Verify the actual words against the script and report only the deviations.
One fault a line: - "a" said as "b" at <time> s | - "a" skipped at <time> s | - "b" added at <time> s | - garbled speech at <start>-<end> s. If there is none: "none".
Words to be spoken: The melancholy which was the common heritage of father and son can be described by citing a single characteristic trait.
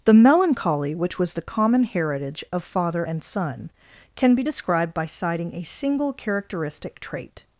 none